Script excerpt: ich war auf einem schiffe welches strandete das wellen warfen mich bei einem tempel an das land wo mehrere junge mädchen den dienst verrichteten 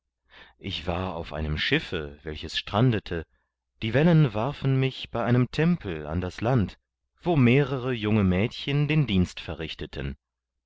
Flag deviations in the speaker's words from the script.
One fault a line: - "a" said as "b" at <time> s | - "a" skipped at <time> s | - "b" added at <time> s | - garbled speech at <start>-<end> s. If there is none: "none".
- "das" said as "die" at 3.8 s